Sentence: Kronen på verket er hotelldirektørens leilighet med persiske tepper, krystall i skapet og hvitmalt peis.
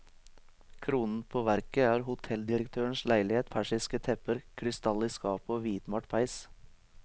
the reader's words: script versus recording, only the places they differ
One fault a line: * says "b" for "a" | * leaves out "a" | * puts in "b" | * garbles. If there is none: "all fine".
* leaves out "med"